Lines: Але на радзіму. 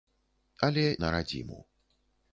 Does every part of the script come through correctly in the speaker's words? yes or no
yes